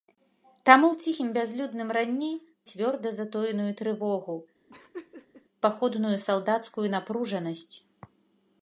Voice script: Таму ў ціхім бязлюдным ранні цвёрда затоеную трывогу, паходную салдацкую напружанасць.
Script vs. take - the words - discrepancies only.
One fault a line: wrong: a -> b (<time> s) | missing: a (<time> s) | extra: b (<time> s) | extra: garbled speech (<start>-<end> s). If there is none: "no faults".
no faults